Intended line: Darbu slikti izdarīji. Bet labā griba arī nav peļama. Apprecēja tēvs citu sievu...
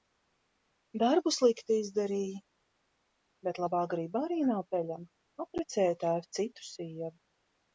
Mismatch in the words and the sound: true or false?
false